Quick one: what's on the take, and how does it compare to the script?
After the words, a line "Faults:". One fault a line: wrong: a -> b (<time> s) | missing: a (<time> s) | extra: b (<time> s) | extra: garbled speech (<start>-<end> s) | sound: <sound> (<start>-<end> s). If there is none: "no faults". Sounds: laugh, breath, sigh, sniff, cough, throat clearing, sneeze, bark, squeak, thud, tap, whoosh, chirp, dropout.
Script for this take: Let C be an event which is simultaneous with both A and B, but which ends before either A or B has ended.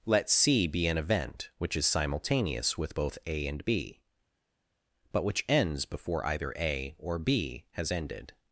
Let C be an event which is simultaneous with both A and B, but which ends before either A or B has ended.
Faults:
no faults